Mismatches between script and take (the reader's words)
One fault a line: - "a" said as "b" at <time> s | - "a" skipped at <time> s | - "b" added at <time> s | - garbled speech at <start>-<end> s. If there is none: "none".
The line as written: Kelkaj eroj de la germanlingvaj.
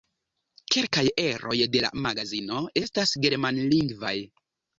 - "magazino estas" added at 2.1 s